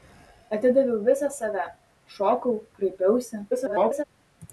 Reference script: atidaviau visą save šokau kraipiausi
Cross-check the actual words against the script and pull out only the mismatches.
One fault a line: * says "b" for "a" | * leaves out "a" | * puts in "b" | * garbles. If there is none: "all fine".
* garbles